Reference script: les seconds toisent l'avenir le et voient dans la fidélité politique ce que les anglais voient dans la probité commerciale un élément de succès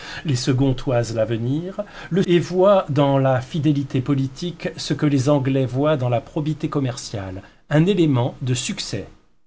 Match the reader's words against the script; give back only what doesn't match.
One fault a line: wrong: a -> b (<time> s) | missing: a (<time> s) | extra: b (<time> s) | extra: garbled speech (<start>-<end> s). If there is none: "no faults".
no faults